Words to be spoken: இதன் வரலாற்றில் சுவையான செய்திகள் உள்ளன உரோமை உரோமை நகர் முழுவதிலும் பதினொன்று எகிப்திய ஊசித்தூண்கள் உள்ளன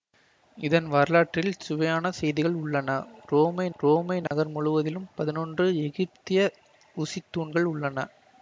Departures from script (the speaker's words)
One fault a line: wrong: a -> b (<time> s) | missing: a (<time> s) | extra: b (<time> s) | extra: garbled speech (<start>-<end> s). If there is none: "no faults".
no faults